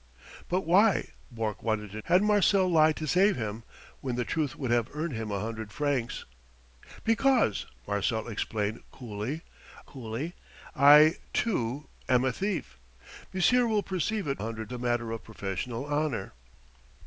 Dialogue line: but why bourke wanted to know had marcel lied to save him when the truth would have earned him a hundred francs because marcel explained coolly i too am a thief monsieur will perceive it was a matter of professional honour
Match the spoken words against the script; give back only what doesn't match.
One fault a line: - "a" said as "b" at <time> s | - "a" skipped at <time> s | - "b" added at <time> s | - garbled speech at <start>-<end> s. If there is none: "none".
- "know" skipped at 2.0 s
- "coolly" added at 9.9 s
- "was" said as "hundred" at 14.4 s